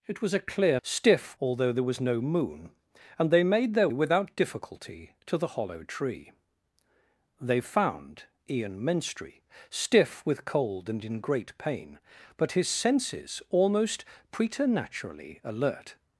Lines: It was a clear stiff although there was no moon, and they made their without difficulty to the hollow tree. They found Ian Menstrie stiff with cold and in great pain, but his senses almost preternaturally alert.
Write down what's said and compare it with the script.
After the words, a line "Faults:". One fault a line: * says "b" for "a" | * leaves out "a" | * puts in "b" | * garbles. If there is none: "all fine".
It was a clear stiff although there was no moon, and they made their without difficulty to the hollow tree. They found Ian Menstrie stiff with cold and in great pain, but his senses almost preternaturally alert.
Faults:
all fine